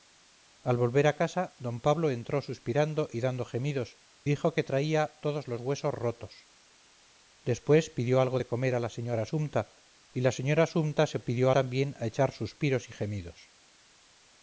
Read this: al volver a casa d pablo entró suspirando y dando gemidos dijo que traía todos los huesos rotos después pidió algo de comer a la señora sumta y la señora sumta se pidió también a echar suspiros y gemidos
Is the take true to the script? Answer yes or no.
yes